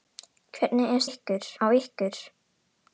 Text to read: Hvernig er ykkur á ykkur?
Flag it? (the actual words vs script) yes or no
no